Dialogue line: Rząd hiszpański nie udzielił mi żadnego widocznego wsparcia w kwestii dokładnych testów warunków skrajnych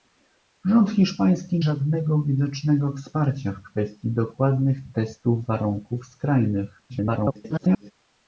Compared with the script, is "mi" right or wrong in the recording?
wrong